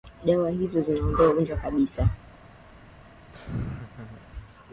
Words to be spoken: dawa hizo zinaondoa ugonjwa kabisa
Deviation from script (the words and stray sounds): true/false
true